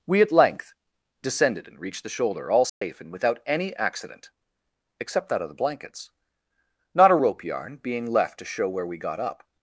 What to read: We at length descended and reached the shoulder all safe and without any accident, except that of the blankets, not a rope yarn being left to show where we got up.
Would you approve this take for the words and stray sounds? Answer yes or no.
no